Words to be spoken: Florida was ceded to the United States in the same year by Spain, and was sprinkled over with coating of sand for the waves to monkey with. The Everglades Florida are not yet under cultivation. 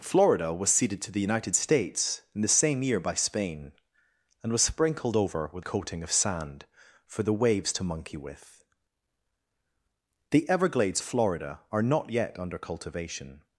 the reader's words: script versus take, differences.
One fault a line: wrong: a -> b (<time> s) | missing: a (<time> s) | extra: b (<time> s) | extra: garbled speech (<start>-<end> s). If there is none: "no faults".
no faults